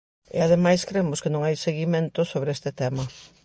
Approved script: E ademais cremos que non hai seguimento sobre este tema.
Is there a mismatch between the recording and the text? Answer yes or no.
no